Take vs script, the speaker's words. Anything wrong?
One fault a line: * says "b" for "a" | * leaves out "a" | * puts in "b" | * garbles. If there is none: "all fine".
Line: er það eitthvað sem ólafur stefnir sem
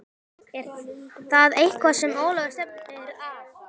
* says "að" for "sem"